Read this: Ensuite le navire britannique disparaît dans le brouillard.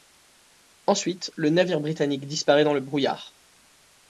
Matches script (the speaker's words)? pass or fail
pass